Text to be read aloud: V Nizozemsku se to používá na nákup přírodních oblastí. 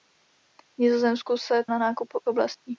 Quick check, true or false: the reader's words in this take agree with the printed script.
false